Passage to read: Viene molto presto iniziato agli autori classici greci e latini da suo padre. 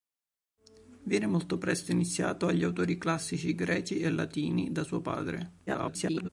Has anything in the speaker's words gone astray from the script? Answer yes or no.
yes